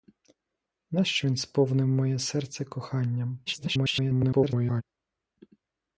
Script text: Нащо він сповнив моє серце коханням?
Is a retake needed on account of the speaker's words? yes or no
yes